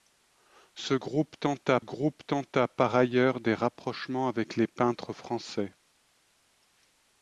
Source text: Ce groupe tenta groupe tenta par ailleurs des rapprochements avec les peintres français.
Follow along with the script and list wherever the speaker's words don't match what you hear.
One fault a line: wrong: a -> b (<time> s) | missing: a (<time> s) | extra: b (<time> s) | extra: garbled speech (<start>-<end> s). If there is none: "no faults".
no faults